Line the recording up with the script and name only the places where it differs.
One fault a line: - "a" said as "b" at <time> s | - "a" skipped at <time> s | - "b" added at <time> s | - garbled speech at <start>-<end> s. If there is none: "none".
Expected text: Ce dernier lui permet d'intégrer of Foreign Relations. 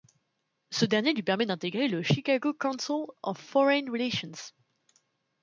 - "le Chicago Council" added at 1.9 s